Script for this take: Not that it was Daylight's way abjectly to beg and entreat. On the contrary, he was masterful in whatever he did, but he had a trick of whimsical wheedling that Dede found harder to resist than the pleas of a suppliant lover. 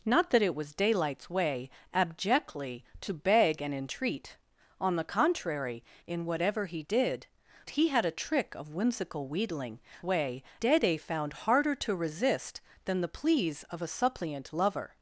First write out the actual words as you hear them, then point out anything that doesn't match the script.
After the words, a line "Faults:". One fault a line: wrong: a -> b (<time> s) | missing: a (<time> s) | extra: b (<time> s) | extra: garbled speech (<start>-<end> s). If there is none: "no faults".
Not that it was Daylight's way abjectly to beg and entreat. On the contrary, in whatever he did, he had a trick of whimsical wheedling way Dede found harder to resist than the pleas of a suppliant lover.
Faults:
missing: he was masterful (5.8 s)
missing: but (7.3 s)
wrong: that -> way (10.0 s)